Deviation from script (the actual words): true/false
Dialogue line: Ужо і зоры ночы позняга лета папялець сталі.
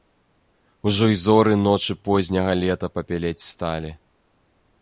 false